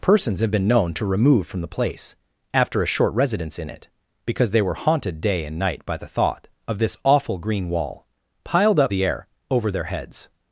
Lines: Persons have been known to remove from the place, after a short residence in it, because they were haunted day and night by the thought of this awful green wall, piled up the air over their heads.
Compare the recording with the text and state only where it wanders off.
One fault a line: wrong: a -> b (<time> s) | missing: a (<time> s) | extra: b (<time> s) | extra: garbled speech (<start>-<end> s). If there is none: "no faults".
no faults